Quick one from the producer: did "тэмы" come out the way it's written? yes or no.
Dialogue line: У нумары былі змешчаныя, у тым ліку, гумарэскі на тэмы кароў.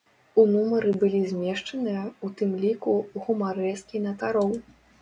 no